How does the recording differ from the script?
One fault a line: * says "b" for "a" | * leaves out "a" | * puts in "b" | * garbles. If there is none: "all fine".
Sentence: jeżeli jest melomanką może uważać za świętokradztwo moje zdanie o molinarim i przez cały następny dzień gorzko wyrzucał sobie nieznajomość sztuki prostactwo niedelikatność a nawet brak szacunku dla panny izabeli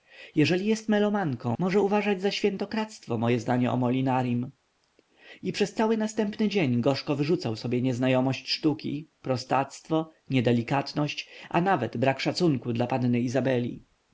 all fine